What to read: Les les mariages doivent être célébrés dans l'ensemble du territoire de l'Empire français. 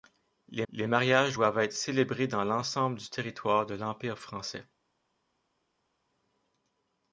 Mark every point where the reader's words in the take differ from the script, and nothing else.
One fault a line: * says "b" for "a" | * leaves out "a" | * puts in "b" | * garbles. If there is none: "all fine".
all fine